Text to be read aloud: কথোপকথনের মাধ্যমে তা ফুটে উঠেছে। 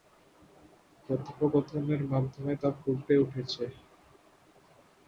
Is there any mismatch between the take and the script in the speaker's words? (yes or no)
no